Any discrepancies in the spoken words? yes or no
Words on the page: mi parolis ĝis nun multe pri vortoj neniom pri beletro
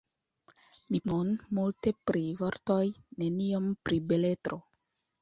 yes